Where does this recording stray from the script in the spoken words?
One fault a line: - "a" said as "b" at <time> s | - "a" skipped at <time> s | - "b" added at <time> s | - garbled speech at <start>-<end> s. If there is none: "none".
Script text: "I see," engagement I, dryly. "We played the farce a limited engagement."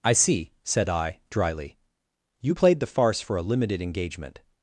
- "engagement" said as "said" at 0.6 s
- "We" said as "You" at 2.4 s
- "for" added at 3.2 s